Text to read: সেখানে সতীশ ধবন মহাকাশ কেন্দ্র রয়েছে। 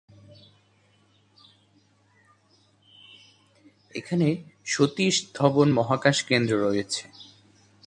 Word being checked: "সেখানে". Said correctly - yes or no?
no